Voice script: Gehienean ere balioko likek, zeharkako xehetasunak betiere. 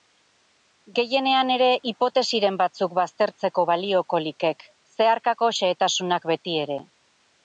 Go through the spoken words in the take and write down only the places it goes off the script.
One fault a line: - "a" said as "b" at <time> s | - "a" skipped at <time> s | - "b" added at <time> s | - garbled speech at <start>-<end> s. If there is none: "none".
- "hipotesiren batzuk baztertzeko" added at 1.9 s